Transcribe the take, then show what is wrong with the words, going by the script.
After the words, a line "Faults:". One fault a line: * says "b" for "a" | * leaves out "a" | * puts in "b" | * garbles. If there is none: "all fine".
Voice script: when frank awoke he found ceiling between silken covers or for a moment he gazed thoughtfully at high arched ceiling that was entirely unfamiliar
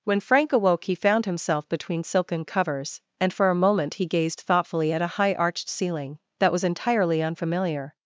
when frank awoke he found himself between silken covers and for a moment he gazed thoughtfully at a high arched ceiling that was entirely unfamiliar
Faults:
* says "himself" for "ceiling"
* says "and" for "or"
* puts in "a"